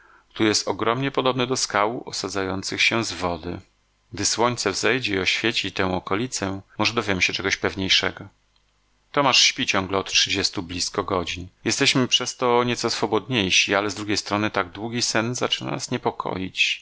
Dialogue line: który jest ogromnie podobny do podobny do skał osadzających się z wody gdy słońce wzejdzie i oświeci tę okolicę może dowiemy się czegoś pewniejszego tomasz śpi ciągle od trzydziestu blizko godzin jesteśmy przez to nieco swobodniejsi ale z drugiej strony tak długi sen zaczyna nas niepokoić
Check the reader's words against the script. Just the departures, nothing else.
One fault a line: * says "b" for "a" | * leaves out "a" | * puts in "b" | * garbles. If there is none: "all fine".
* leaves out "podobny do"